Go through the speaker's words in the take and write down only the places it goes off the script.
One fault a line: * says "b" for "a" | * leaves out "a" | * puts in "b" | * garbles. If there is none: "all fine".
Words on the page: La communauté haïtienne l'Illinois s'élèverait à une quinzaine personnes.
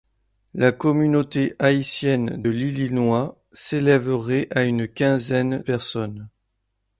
all fine